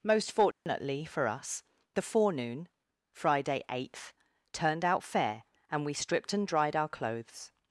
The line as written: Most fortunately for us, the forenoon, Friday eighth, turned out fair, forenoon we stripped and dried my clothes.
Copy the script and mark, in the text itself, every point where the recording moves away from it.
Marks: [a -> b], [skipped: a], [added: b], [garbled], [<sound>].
Most fortunately [dropout] for us, the forenoon, Friday eighth, turned out fair, [forenoon -> and] we stripped and dried [my -> our] clothes.